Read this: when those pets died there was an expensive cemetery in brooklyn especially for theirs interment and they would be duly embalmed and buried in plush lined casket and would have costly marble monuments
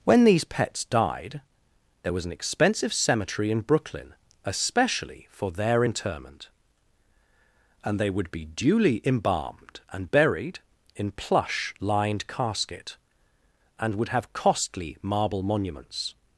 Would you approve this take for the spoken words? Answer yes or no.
no